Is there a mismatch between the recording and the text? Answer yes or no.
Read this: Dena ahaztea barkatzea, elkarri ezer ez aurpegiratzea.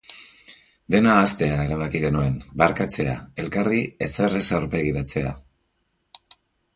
yes